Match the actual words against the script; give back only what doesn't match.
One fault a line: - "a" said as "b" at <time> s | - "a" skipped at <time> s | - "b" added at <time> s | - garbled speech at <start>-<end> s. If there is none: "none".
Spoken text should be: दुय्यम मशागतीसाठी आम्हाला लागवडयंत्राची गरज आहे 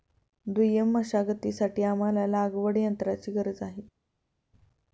none